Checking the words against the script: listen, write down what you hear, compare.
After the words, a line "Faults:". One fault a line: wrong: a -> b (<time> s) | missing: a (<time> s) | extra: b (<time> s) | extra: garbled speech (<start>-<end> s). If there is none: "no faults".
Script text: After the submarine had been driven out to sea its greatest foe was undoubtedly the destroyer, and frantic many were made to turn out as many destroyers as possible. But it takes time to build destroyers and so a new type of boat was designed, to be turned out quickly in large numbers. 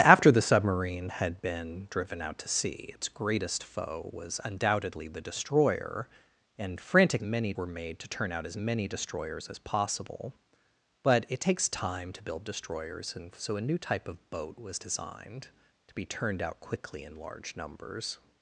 After the submarine had been driven out to sea its greatest foe was undoubtedly the destroyer, and frantic many were made to turn out as many destroyers as possible. But it takes time to build destroyers and so a new type of boat was designed, to be turned out quickly in large numbers.
Faults:
no faults